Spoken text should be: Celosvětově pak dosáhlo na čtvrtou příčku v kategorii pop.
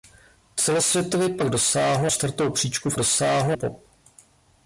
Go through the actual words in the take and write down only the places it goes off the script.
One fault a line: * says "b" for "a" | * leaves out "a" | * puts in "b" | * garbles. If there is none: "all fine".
* leaves out "na"
* says "dosáhlo" for "kategorii"